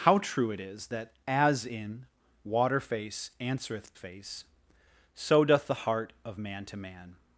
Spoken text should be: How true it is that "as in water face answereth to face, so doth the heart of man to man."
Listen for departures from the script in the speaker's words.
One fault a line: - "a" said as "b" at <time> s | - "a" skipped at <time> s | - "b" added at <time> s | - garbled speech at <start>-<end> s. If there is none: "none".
- "to" skipped at 3.9 s